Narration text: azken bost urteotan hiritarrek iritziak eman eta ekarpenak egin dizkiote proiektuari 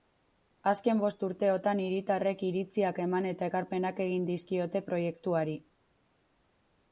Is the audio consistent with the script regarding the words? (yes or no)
yes